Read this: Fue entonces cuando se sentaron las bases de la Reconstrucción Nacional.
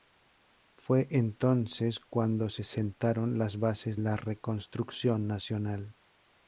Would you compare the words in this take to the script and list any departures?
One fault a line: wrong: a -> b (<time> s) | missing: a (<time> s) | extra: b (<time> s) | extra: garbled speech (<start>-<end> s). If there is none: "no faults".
missing: de (4.0 s)